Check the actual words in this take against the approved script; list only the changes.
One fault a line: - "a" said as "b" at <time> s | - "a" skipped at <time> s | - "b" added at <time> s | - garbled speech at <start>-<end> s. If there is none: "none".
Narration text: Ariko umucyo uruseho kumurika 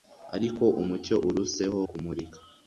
none